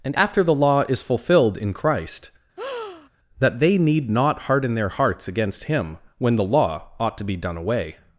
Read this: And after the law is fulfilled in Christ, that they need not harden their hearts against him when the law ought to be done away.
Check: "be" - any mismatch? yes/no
no